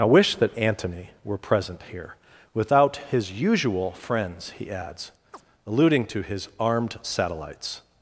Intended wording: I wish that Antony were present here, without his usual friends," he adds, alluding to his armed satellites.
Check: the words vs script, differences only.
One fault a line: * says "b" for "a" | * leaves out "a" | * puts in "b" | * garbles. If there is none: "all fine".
all fine